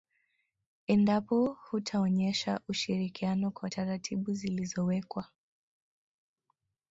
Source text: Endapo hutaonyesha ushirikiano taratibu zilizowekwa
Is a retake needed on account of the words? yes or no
yes